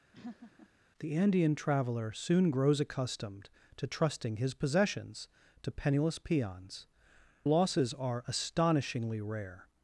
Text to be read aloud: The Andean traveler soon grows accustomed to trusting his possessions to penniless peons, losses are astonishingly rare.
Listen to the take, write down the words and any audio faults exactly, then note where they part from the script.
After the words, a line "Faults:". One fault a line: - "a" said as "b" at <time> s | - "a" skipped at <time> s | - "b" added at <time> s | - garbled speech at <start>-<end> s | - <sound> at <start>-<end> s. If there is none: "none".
The Andean traveler soon grows accustomed to trusting his possessions to penniless peons, losses are astonishingly rare.
Faults:
- laugh at 0.1-0.7 s